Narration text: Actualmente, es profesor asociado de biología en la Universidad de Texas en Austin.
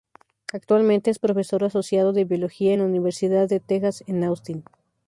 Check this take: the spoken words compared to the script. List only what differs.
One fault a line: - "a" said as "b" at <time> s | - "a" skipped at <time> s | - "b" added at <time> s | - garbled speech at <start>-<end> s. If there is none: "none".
none